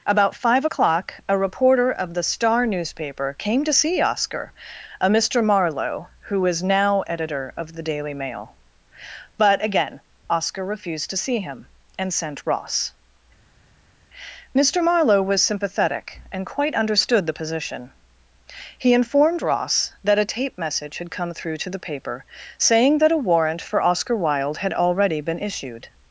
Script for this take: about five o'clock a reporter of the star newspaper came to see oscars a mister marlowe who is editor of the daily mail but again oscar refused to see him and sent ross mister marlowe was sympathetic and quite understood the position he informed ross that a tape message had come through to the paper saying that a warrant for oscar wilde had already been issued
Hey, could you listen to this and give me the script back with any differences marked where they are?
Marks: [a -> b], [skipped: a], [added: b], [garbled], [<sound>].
about five o'clock a reporter of the star newspaper came to see [oscars -> oscar] a mister marlowe who is [added: now] editor of the daily mail but again oscar refused to see him and sent ross mister marlowe was sympathetic and quite understood the position he informed ross that a tape message had come through to the paper saying that a warrant for oscar wilde had already been issued